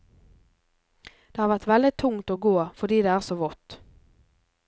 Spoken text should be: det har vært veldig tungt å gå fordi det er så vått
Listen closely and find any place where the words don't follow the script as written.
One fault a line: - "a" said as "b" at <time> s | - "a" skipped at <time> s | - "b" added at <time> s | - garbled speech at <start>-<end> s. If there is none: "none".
none